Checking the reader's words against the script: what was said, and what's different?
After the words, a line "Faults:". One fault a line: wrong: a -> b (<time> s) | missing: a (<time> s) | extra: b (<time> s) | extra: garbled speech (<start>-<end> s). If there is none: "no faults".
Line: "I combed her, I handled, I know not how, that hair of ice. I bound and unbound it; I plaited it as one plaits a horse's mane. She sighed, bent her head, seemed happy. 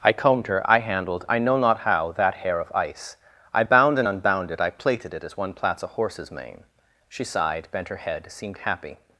"I combed her, I handled, I know not how, that hair of ice. I bound and unbound it; I plaited it as one plaits a horse's mane. She sighed, bent her head, seemed happy.
Faults:
no faults